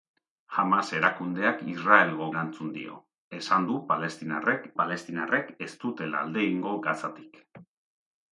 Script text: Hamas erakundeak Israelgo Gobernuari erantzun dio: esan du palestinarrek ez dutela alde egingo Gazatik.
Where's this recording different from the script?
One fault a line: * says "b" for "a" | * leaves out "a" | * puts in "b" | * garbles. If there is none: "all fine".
* leaves out "Gobernuari"
* puts in "palestinarrek"